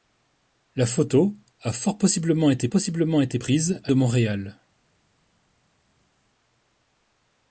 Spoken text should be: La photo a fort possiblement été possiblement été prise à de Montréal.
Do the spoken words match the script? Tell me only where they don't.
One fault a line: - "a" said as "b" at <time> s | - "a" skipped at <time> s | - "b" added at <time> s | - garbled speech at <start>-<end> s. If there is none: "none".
none